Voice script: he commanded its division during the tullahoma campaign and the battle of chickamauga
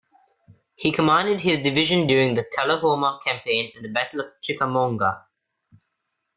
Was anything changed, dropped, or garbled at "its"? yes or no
yes